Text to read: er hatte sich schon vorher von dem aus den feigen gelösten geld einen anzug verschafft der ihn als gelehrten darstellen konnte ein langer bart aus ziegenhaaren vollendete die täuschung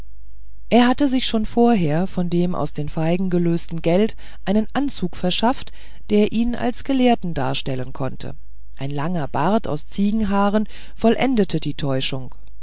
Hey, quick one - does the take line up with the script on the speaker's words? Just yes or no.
yes